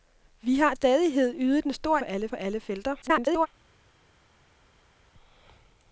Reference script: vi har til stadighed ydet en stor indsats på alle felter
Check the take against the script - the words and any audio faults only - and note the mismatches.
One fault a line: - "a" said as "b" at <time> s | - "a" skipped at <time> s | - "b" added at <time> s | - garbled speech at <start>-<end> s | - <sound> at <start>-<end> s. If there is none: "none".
- "til" skipped at 0.7 s
- "indsats" said as "alle" at 2.0 s
- garbled speech at 3.0-3.5 s